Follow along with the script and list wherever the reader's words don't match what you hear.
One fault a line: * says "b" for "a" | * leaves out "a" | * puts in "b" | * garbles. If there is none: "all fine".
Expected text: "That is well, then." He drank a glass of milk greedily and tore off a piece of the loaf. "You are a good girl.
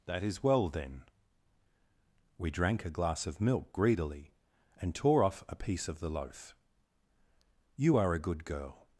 * says "We" for "He"